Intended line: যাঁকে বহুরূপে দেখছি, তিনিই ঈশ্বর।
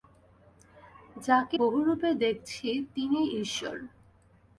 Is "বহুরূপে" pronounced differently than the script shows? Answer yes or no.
no